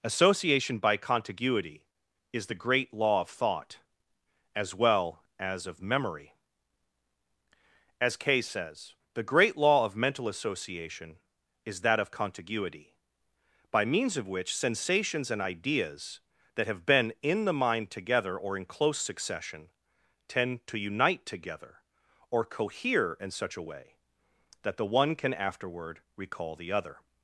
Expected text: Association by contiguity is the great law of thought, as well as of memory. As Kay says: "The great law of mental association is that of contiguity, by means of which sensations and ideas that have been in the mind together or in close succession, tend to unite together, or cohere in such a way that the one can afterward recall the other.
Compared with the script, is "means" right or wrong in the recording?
right